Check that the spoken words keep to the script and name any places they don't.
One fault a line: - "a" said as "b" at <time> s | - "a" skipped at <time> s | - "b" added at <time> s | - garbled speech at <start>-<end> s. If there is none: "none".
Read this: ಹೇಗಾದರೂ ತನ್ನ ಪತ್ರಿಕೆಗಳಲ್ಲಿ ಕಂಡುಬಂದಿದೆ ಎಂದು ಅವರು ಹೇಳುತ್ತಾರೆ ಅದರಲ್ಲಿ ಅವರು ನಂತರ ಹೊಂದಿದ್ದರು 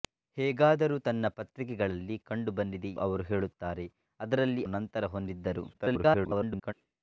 - "ಎಂದು" skipped at 2.9 s
- "ಅವರು" skipped at 4.6 s
- garbled speech at 5.7-6.7 s